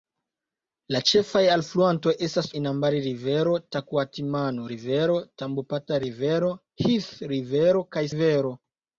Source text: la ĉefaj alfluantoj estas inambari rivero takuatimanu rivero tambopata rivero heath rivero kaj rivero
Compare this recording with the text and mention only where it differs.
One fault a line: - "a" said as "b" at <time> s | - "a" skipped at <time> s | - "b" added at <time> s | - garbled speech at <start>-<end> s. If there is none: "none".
none